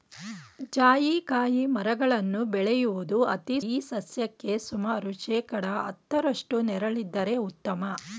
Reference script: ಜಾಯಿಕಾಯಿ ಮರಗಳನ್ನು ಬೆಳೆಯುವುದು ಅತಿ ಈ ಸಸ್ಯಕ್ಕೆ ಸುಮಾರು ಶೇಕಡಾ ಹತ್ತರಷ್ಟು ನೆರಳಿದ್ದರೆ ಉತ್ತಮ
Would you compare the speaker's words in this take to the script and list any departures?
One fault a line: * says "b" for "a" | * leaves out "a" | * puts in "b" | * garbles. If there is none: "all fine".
all fine